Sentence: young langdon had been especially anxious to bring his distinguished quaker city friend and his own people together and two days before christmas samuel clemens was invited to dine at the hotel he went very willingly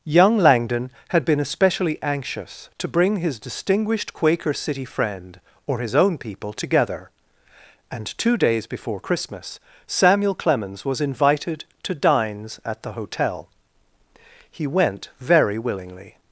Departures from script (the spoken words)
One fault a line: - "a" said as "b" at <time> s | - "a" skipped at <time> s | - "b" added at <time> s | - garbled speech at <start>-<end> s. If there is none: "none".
- "and" said as "or" at 5.7 s
- "dine" said as "dines" at 12.0 s